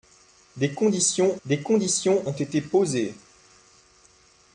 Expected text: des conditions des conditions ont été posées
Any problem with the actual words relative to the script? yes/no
no